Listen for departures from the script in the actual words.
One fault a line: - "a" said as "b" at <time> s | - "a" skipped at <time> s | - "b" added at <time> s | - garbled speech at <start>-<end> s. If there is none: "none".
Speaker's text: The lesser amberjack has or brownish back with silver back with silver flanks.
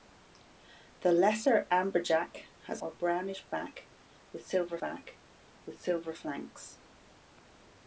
none